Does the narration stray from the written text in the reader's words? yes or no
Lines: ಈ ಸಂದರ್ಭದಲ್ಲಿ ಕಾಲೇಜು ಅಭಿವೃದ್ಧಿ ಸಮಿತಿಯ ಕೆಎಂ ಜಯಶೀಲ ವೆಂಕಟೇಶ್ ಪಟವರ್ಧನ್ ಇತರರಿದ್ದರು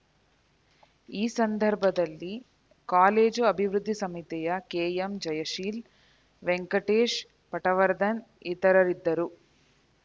no